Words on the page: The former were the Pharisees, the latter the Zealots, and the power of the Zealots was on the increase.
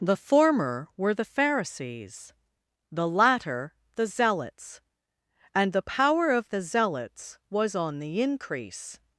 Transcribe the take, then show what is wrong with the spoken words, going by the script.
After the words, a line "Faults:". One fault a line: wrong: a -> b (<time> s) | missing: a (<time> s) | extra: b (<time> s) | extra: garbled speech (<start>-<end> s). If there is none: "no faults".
The former were the Pharisees, the latter the Zealots, and the power of the Zealots was on the increase.
Faults:
no faults